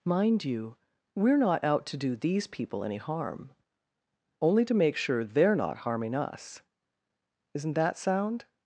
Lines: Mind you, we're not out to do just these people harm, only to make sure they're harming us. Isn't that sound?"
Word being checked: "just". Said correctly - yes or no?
no